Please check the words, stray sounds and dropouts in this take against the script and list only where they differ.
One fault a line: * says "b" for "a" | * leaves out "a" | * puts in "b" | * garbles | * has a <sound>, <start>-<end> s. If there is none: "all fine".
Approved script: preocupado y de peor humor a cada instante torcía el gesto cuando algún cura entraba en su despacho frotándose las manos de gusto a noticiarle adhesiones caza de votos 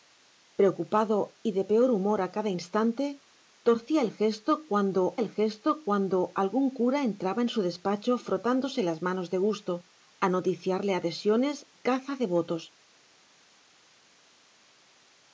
* puts in "el gesto cuando"